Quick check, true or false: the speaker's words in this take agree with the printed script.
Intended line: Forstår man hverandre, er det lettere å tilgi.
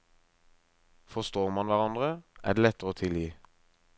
true